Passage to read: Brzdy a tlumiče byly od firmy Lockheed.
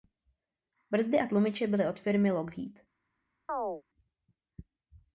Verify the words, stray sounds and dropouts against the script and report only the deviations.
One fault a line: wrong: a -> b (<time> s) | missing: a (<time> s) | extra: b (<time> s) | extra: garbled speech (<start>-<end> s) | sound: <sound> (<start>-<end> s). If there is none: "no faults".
sound: chirp (3.5-3.8 s)